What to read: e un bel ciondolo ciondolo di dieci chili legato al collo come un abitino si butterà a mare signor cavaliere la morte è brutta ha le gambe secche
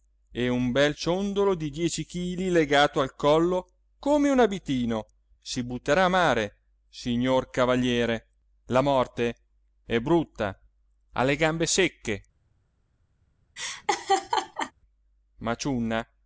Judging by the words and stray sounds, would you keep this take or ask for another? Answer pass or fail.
fail